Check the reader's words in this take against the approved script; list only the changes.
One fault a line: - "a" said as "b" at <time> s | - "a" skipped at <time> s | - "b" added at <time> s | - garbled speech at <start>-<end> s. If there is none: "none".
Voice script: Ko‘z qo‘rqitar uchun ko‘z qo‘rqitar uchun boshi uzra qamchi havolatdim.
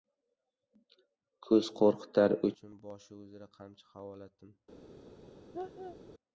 - "ko‘z qo‘rqitar uchun" skipped at 2.8 s